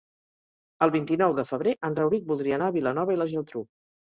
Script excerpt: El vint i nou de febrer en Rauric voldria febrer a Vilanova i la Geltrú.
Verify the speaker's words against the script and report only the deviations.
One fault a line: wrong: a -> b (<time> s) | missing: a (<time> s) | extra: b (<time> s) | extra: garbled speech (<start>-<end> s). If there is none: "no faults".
wrong: febrer -> anar (2.6 s)